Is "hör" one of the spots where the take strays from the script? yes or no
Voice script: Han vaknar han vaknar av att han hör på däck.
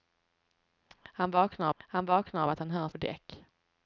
no